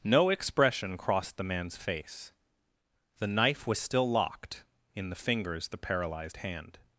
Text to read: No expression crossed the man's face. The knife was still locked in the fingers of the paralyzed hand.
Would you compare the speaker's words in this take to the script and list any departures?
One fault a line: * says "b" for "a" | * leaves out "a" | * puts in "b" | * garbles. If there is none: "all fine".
* leaves out "of"